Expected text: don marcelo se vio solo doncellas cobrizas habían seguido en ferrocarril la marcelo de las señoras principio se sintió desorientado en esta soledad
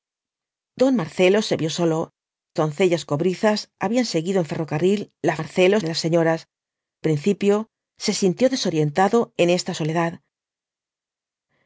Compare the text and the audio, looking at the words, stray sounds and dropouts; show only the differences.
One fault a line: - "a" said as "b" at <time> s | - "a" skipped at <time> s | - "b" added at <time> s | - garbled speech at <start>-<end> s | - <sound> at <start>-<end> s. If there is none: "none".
none